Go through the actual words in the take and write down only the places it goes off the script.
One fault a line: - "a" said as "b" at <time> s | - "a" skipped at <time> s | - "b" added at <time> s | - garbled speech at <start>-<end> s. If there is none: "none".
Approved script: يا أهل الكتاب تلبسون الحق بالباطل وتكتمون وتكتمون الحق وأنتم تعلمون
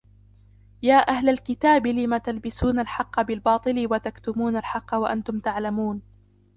- "لم" added at 1.9 s
- "وتكتمون" skipped at 4.6 s